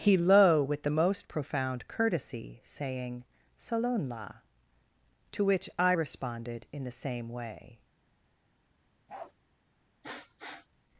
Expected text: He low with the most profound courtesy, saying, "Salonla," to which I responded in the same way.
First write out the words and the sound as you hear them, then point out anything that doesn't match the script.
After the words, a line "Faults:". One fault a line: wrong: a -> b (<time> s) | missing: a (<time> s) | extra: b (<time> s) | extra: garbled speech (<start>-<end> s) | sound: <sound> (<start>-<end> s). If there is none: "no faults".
He low with the most profound courtesy, saying, "Salonla," to which I responded in the same way.
Faults:
sound: bark (9.1-9.3 s)
sound: sniff (10.0-10.7 s)